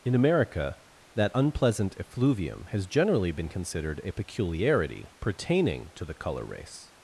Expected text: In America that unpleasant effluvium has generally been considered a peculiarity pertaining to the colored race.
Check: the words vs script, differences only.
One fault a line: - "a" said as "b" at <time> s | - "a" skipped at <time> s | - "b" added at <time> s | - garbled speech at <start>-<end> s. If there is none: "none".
- "colored" said as "color" at 6.1 s